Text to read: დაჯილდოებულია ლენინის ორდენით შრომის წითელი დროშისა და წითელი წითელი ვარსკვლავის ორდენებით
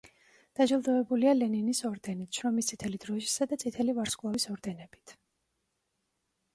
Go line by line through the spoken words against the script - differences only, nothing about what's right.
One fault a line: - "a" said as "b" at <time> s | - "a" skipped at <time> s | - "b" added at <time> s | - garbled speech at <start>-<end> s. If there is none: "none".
- "წითელი" skipped at 4.0 s